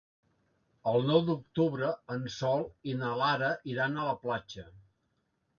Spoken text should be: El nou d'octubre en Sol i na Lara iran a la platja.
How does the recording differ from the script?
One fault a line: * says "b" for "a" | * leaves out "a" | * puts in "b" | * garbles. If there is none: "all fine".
all fine